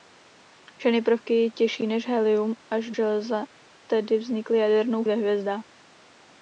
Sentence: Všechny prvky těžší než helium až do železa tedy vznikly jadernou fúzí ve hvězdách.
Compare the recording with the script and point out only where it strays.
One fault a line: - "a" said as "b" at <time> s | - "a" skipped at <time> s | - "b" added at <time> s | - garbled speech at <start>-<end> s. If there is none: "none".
- "do" skipped at 2.9 s
- "fúzí" skipped at 5.0 s